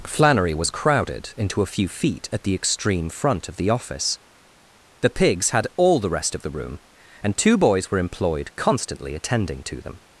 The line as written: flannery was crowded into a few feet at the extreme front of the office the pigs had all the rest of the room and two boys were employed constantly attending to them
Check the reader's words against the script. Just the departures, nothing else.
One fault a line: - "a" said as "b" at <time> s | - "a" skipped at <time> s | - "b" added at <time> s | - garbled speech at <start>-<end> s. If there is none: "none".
none